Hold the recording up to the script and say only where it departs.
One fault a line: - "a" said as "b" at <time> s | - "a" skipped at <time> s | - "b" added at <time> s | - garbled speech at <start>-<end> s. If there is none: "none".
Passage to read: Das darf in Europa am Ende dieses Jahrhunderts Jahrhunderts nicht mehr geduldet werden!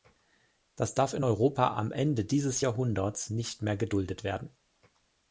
- "Jahrhunderts" skipped at 3.3 s